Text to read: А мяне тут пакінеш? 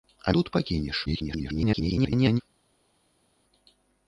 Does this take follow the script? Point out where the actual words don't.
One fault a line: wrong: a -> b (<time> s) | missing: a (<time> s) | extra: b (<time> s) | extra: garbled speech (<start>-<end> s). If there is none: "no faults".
missing: мяне (0.3 s)
extra: garbled speech (1.1-2.4 s)